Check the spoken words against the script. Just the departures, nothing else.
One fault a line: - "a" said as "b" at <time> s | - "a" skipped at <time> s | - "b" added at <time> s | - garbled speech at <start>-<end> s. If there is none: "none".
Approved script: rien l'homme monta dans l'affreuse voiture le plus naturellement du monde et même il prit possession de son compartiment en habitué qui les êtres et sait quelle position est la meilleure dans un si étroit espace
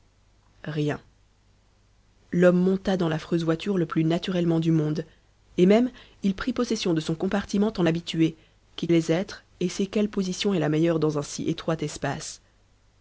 none